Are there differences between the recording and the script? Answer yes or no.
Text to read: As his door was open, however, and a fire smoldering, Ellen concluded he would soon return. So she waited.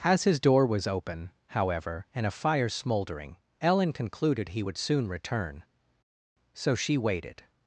no